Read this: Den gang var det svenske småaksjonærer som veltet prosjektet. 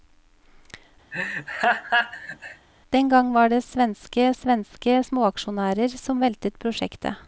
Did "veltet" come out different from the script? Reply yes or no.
no